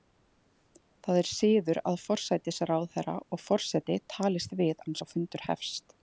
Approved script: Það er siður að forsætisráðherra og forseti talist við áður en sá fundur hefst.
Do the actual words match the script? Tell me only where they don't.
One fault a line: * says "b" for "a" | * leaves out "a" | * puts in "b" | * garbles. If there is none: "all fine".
* leaves out "áður"